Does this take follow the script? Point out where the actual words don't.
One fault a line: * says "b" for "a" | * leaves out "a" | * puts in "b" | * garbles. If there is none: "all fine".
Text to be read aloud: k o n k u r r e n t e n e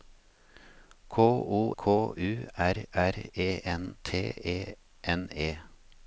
* leaves out "n"